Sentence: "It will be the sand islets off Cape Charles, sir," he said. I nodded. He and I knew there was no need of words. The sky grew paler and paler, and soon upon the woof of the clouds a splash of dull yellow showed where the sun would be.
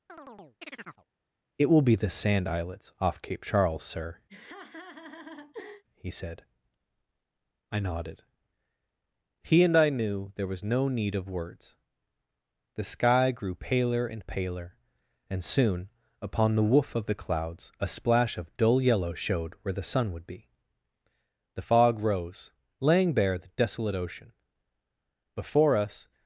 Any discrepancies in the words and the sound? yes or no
yes